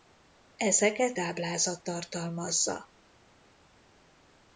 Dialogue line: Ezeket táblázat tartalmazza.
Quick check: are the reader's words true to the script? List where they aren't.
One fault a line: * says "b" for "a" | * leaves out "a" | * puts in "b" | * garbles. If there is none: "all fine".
all fine